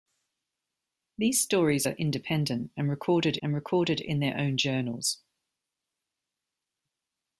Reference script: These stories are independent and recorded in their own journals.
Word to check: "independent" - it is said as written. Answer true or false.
true